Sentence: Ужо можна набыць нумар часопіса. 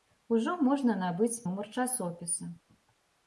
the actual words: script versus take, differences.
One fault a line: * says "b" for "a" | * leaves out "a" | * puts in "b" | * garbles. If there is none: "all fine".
all fine